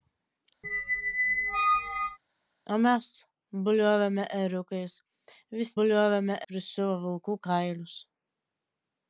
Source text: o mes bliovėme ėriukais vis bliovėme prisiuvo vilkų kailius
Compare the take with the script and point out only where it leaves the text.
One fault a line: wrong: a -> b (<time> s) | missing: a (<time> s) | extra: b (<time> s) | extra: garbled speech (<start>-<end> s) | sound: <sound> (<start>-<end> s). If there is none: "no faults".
sound: squeak (0.6-2.2 s)